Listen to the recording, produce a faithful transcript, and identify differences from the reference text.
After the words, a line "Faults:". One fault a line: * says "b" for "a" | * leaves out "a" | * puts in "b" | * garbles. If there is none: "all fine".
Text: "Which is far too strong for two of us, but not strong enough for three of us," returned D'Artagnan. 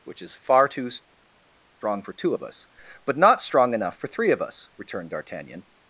"Which is far too strong for two of us, but not strong enough for three of us," returned D'Artagnan.
Faults:
all fine